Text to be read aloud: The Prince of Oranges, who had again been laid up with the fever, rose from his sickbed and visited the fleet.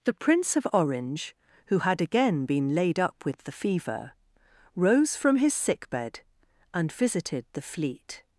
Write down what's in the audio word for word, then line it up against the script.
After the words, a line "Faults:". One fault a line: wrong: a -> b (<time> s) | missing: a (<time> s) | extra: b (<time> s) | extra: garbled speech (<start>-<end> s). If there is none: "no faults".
The Prince of Orange, who had again been laid up with the fever, rose from his sickbed and visited the fleet.
Faults:
wrong: Oranges -> Orange (0.7 s)